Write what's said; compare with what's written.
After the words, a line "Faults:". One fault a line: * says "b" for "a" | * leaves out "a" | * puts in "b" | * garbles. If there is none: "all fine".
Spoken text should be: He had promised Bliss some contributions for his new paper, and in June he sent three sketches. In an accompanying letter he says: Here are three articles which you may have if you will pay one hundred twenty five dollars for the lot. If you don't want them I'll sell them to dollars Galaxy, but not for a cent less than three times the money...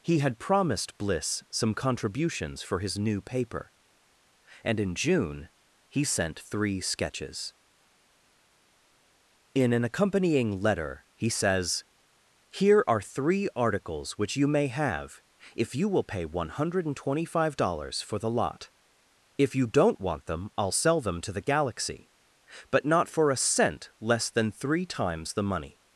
He had promised Bliss some contributions for his new paper, and in June he sent three sketches. In an accompanying letter he says: Here are three articles which you may have if you will pay one hundred twenty five dollars for the lot. If you don't want them I'll sell them to the Galaxy, but not for a cent less than three times the money...
Faults:
* says "the" for "dollars"